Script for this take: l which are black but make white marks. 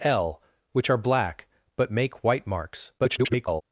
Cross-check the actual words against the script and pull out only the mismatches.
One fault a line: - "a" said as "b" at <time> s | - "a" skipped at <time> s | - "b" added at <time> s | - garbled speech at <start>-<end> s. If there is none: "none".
- garbled speech at 3.0-3.6 s